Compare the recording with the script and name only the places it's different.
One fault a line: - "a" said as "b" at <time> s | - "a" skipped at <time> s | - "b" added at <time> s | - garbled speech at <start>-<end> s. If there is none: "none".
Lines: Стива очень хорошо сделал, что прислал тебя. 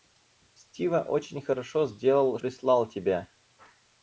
- "что" skipped at 2.4 s